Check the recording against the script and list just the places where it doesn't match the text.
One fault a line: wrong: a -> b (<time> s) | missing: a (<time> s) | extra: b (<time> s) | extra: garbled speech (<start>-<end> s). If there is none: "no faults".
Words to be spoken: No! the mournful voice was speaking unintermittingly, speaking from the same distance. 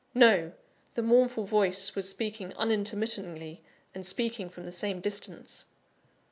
extra: and (3.9 s)